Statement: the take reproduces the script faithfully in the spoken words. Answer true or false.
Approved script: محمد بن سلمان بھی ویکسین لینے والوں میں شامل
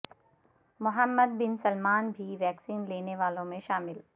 true